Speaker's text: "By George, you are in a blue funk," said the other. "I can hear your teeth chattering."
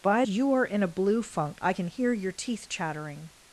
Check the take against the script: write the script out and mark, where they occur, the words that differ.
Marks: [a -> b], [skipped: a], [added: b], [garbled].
"By [skipped: George,] you are in a blue funk," [skipped: said the other.] "I can hear your teeth chattering."